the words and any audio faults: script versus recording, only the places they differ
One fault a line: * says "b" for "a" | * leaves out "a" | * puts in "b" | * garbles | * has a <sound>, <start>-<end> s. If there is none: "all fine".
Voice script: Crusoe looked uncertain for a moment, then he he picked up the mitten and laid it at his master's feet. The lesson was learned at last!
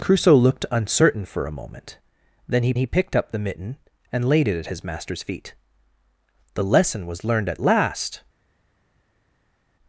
all fine